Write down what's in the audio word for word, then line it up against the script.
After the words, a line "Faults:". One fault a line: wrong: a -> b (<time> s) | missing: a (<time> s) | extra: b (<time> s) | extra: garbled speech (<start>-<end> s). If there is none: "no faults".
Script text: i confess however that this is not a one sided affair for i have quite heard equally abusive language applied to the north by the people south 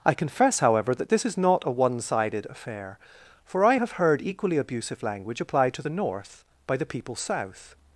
i confess however that this is not a one sided affair for i have heard equally abusive language applied to the north by the people south
Faults:
missing: quite (3.9 s)